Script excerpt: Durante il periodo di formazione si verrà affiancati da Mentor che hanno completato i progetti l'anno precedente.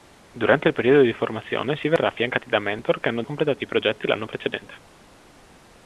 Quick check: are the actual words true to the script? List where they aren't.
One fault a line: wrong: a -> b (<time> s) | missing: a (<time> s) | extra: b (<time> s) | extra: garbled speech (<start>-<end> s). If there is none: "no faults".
no faults